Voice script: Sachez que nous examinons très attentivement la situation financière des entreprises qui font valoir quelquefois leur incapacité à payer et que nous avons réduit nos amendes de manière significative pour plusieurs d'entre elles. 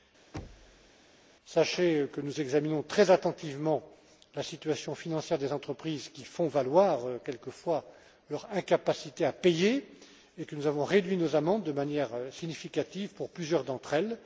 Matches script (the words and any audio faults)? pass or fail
fail